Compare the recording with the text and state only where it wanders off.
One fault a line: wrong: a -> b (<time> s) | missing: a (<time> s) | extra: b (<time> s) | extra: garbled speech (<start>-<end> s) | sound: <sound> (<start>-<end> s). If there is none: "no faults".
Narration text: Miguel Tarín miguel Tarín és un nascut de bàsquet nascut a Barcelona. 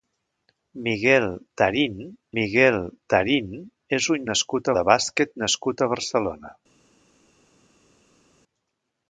no faults